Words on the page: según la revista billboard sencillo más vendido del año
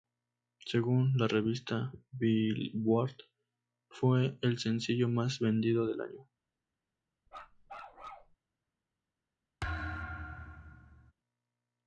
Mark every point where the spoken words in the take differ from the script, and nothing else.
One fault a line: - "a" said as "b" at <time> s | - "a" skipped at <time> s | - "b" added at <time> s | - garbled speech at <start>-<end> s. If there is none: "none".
- "fue el" added at 3.9 s